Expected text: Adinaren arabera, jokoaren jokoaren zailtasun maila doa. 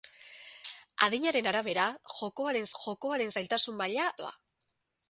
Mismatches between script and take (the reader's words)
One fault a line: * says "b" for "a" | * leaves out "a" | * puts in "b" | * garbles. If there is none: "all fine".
all fine